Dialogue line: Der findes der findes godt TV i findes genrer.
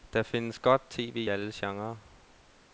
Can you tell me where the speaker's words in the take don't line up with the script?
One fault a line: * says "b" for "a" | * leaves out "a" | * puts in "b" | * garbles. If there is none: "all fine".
* leaves out "der findes"
* says "alle" for "findes"